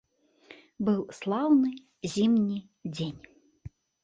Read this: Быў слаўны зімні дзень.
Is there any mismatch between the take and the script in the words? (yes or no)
no